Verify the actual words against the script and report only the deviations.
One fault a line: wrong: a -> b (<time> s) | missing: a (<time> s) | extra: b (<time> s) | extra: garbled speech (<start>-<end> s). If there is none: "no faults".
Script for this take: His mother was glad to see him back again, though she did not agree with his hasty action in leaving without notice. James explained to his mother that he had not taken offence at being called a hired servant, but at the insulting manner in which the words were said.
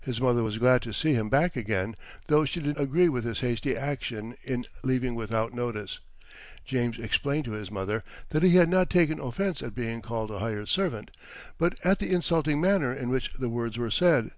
missing: not (2.8 s)